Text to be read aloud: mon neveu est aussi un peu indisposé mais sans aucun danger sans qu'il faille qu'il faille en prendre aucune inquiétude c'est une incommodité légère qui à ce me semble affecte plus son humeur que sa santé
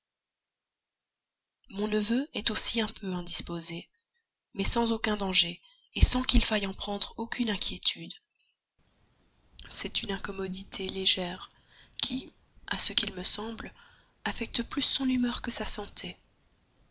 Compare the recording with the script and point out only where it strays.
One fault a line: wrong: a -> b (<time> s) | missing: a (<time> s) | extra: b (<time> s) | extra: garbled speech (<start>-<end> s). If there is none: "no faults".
missing: qu'il faille (6.7 s)
extra: qu'il (12.9 s)